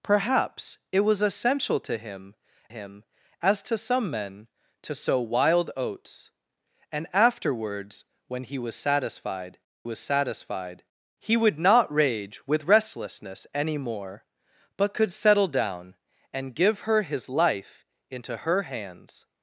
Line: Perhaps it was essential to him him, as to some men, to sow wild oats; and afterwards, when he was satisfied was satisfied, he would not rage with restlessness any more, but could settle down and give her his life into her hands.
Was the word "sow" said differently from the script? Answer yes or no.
no